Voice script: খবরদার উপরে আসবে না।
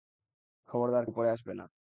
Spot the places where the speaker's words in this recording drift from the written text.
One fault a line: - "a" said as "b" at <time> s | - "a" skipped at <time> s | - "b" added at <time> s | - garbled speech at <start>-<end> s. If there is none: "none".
none